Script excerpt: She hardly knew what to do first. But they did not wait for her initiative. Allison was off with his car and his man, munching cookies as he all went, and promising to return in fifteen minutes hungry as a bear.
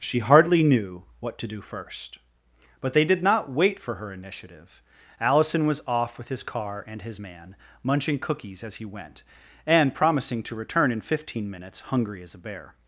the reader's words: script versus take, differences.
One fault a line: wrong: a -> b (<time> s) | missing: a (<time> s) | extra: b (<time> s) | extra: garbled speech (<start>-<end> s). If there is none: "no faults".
missing: all (8.8 s)